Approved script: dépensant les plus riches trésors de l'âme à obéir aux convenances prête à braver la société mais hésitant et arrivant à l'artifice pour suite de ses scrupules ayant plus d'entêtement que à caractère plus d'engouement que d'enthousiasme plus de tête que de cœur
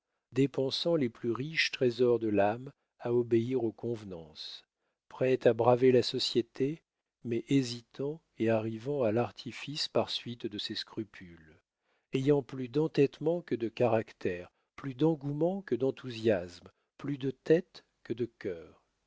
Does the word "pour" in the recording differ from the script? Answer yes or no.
yes